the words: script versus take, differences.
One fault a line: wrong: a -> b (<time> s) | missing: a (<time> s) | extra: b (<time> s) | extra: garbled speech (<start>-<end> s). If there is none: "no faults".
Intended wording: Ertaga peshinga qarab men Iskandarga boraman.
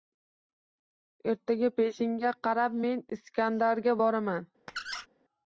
no faults